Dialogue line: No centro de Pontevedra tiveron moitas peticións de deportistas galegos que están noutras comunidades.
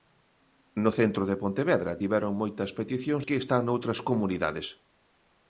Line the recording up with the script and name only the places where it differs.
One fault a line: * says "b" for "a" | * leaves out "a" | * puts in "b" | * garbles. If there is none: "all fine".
* leaves out "de deportistas galegos"